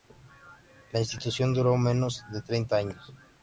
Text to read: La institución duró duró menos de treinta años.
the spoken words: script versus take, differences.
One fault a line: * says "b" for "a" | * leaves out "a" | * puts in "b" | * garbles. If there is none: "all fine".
* leaves out "duró"